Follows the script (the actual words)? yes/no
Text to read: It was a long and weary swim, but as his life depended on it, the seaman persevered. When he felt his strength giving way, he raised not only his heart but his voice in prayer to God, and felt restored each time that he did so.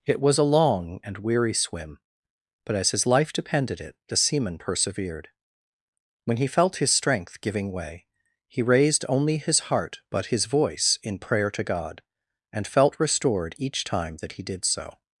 no